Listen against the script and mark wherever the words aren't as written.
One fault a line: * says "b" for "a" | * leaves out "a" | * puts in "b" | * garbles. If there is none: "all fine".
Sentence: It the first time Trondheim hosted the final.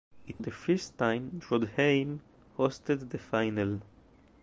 all fine